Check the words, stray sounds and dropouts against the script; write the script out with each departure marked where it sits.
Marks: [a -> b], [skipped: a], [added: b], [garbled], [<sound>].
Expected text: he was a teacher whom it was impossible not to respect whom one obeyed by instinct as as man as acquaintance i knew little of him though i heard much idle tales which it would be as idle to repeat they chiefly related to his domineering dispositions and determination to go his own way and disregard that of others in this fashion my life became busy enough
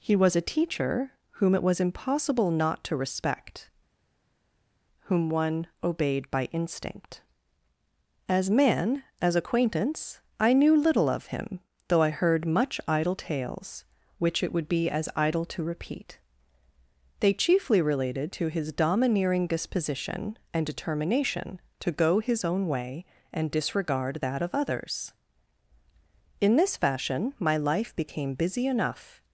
he was a teacher whom it was impossible not to respect whom one obeyed by instinct as [skipped: as] man as acquaintance i knew little of him though i heard much idle tales which it would be as idle to repeat they chiefly related to his domineering [dispositions -> disposition] and determination to go his own way and disregard that of others in this fashion my life became busy enough